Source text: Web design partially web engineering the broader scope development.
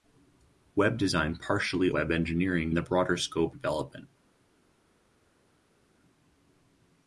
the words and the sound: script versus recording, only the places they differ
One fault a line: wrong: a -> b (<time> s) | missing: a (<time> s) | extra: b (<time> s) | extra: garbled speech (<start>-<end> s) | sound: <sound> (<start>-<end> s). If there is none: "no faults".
no faults